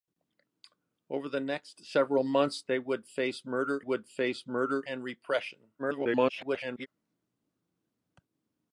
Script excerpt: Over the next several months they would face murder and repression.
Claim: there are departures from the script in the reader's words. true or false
true